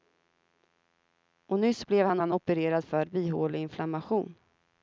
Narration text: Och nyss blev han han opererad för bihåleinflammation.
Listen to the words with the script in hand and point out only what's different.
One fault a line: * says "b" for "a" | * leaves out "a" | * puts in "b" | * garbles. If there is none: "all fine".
all fine